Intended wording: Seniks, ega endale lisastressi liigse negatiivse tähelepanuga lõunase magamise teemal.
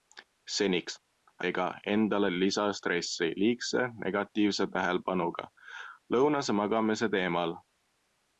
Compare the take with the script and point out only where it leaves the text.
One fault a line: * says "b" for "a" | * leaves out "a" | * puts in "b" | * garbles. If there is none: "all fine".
all fine